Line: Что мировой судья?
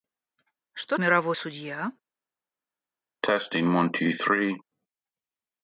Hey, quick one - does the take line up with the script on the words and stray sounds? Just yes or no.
no